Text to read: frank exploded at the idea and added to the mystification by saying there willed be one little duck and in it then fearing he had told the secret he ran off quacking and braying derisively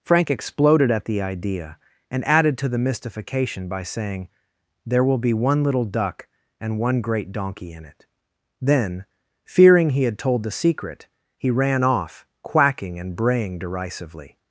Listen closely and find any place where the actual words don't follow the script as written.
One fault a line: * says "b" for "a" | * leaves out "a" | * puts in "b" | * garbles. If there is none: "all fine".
* says "will" for "willed"
* puts in "one great donkey"